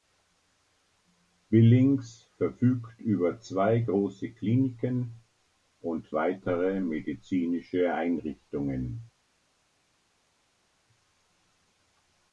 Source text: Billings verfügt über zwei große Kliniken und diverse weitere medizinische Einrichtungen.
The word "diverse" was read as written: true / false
false